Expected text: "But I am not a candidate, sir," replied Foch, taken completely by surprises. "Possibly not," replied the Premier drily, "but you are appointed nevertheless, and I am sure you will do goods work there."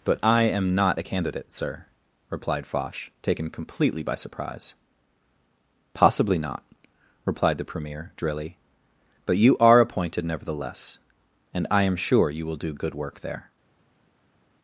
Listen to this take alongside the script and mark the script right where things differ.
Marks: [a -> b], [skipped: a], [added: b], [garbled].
"But I am not a candidate, sir," replied Foch, taken completely by [surprises. -> surprise] "Possibly not," replied the Premier drily, "but you are appointed nevertheless, and I am sure you will do [goods -> good] work there."